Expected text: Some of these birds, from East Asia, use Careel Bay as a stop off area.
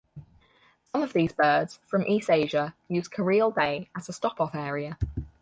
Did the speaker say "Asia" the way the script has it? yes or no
yes